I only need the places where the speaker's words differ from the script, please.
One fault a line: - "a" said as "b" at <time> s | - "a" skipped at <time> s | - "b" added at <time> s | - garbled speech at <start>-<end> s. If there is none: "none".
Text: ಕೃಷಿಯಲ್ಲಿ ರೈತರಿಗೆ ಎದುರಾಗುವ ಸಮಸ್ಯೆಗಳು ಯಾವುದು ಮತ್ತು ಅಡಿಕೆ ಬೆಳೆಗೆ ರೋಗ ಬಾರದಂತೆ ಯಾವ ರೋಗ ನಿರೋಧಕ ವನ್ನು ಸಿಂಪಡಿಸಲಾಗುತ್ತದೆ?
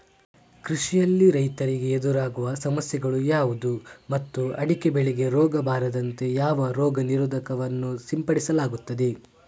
none